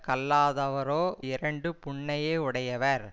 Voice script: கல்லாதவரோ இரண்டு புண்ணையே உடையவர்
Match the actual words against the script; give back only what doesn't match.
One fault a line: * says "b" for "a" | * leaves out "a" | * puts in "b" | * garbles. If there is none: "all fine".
all fine